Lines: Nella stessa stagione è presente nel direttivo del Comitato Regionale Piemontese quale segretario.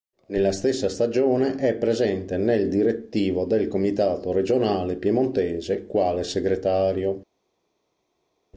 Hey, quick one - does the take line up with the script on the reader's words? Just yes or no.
yes